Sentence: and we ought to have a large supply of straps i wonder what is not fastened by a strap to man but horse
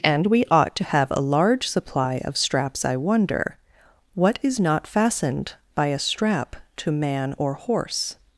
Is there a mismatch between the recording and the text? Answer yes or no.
yes